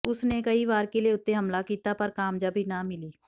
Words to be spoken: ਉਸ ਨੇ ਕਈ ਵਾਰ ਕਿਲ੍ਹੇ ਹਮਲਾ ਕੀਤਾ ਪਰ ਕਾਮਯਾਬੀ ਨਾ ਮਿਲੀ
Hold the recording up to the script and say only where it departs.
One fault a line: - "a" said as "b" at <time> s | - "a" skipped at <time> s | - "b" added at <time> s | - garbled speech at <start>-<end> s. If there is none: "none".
- "ਉੱਤੇ" added at 1.1 s